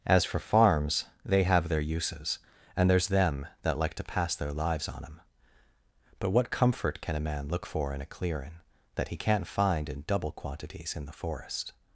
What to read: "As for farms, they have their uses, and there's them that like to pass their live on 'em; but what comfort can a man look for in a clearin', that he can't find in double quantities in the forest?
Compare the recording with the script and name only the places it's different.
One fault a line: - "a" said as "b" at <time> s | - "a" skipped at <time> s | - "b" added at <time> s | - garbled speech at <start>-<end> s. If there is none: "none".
- "live" said as "lives" at 4.5 s